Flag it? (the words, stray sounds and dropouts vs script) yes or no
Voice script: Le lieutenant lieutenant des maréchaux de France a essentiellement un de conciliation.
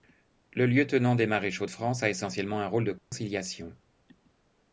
yes